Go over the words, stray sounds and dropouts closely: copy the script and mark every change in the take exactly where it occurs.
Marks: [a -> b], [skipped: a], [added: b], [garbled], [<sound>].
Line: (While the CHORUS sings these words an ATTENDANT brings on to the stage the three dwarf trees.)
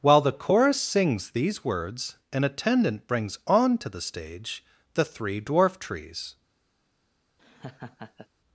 (While the CHORUS sings these words an ATTENDANT brings on to the stage the three dwarf trees.) [laugh]